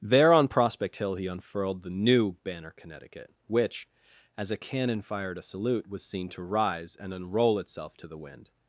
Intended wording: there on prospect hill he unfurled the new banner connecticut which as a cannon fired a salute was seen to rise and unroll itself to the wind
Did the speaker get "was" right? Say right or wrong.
right